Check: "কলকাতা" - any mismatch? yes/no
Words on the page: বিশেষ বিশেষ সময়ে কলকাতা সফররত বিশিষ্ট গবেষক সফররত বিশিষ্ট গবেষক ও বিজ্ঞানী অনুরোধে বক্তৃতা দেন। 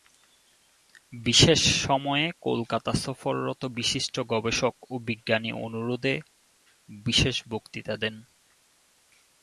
no